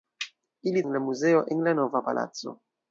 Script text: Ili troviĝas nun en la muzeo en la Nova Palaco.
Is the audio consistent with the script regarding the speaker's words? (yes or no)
no